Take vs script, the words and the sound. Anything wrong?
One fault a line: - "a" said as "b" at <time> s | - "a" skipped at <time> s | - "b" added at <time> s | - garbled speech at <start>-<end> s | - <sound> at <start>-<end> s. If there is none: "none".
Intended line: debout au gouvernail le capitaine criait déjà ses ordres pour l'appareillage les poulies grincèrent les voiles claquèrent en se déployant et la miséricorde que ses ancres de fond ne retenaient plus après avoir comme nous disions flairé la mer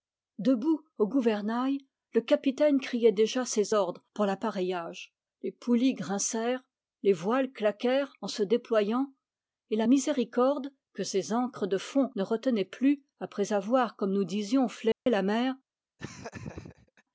- dropout at 14.9-15.1 s
- laugh at 16.0-17.0 s